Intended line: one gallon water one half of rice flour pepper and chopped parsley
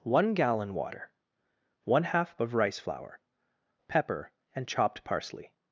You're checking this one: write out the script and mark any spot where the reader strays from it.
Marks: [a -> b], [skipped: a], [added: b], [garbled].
one gallon water one half of rice flour pepper and chopped parsley